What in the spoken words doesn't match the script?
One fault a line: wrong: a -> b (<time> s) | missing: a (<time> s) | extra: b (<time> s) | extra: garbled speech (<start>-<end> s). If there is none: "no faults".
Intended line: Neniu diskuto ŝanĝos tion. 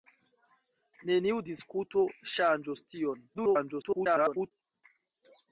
extra: garbled speech (3.3-4.5 s)